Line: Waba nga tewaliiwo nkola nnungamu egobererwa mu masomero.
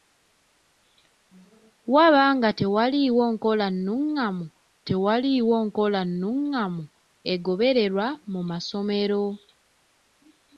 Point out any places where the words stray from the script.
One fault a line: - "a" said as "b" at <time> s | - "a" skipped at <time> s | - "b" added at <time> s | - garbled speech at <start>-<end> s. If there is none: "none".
- "tewaliiwo nkola nnungamu" added at 4.9 s